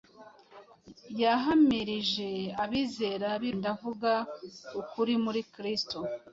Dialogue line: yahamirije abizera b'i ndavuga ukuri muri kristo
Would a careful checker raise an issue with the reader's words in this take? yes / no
no